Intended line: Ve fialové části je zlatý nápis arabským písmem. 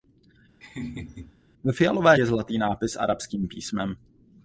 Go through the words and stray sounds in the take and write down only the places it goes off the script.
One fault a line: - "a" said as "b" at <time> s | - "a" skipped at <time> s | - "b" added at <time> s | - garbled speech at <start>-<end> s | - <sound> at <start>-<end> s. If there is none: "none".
- laugh at 0.6-1.3 s
- "části" skipped at 2.2 s